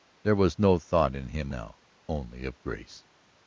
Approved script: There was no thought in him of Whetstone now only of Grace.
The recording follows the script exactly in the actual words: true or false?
false